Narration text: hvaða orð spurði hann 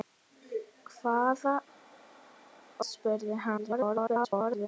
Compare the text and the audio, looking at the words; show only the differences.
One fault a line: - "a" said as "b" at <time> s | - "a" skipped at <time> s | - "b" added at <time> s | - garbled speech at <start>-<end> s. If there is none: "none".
- "orð" skipped at 1.6 s
- garbled speech at 3.6-4.7 s